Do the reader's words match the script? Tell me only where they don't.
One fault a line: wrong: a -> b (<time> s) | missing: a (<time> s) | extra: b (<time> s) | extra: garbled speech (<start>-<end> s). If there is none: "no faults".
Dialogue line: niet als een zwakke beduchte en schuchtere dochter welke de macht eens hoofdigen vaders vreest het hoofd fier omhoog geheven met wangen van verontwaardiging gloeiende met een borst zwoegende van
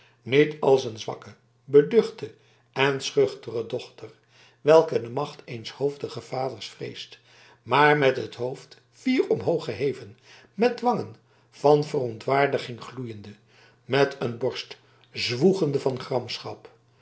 extra: maar met (7.6 s)